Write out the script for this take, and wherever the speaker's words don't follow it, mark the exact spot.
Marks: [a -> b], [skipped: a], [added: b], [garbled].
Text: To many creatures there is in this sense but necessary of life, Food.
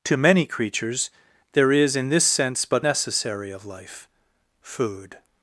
To many creatures there is in this sense but necessary of life, Food.